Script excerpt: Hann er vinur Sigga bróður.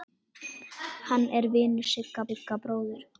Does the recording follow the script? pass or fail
fail